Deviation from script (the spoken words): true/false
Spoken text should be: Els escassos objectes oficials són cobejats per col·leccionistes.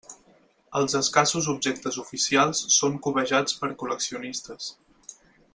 false